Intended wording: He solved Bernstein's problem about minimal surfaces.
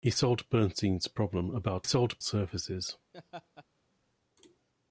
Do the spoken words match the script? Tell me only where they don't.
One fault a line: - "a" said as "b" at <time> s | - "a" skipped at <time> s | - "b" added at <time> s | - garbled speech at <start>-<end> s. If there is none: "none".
- "minimal" said as "solved" at 1.8 s